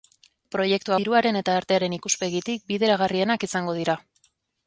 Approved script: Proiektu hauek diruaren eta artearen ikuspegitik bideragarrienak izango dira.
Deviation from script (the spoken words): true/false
true